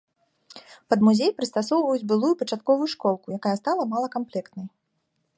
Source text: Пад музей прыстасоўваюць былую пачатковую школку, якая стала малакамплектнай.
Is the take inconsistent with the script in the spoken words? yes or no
no